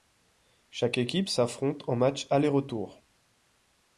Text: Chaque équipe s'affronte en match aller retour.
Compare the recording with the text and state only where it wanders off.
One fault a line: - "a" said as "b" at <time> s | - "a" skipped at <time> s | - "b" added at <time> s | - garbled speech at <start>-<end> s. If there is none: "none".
none